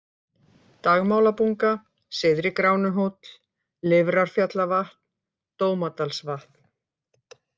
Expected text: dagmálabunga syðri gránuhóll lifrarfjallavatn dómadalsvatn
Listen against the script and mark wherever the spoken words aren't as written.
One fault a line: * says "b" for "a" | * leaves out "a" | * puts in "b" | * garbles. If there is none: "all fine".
all fine